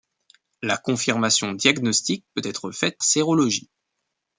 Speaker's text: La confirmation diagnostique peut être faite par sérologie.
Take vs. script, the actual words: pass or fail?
fail